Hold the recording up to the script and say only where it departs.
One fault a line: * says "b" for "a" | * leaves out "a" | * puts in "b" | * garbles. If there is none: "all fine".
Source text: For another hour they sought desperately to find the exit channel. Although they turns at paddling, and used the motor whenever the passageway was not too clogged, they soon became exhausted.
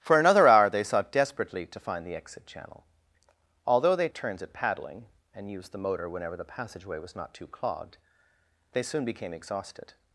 all fine